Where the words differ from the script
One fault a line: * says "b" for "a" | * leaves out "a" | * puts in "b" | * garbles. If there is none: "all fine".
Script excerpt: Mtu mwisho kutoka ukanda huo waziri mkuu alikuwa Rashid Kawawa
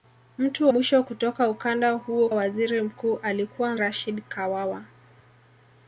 all fine